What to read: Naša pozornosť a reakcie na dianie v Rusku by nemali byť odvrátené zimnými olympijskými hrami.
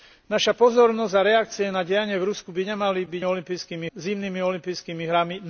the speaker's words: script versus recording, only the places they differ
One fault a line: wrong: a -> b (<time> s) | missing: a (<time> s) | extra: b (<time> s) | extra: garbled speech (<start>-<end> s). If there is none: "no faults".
wrong: odvrátené -> olympijskými (3.2 s)